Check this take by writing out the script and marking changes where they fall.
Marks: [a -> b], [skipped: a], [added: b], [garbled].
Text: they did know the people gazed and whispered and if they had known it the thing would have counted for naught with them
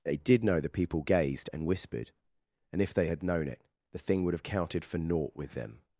they did know the people gazed and whispered and if they had known it the thing would have counted for naught with them